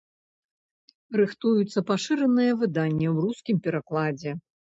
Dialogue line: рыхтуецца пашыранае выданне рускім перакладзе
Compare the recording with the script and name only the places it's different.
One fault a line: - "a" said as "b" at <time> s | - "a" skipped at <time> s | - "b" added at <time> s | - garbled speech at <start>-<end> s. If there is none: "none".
- "ў" added at 3.1 s